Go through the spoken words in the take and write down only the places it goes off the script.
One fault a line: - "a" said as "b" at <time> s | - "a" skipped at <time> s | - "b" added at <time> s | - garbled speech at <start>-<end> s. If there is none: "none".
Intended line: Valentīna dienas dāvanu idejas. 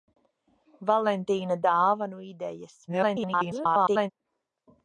- "dienas" skipped at 1.6 s
- garbled speech at 2.9-4.1 s